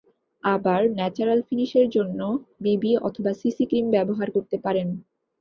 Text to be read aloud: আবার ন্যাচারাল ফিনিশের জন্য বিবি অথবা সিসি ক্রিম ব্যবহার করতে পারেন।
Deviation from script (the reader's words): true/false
false